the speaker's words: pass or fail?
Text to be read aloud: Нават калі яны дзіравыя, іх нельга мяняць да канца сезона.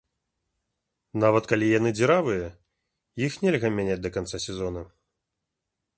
pass